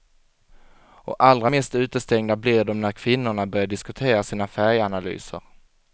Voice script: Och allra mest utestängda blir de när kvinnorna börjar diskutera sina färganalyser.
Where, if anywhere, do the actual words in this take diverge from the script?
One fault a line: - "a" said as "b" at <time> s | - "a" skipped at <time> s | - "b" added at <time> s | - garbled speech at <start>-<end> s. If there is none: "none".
none